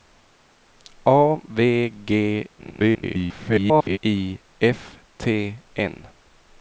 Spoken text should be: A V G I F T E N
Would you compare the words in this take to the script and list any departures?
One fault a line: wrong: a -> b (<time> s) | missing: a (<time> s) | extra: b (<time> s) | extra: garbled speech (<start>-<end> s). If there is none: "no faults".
extra: garbled speech (2.6-4.0 s)
missing: E (5.6 s)